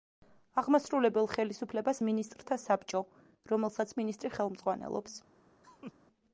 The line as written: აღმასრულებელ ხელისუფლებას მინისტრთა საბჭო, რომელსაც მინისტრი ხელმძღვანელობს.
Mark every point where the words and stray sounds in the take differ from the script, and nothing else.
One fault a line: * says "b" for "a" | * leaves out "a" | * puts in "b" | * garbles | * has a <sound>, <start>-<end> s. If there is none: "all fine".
* has a laugh, 5.6-5.9 s